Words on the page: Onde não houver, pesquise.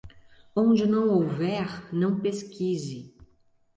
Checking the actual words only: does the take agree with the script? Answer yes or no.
no